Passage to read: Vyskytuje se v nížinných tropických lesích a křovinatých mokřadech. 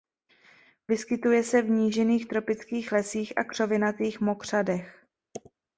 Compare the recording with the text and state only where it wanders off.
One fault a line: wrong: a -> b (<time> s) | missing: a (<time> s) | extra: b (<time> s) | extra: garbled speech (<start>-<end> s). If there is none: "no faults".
no faults